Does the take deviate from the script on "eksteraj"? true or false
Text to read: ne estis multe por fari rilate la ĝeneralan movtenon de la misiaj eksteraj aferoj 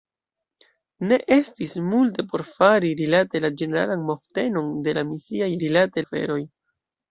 true